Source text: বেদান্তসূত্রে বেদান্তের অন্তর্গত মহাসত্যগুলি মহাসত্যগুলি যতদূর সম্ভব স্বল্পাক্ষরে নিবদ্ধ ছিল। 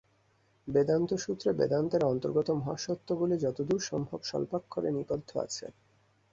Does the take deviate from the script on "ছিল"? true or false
true